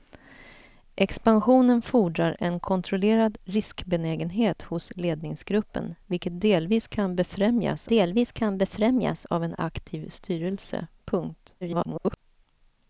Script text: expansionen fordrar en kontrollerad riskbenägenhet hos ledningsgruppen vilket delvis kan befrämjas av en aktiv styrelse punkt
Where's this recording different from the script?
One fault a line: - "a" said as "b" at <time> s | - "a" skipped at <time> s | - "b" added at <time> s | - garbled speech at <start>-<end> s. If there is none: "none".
- "delvis kan befrämjas" added at 7.9 s
- garbled speech at 11.6-12.2 s